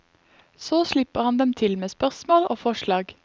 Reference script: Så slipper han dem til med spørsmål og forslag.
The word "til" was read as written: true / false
true